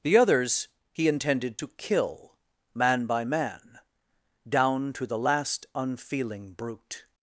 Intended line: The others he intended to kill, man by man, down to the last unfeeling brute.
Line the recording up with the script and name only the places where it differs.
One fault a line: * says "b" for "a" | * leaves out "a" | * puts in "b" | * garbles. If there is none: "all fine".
all fine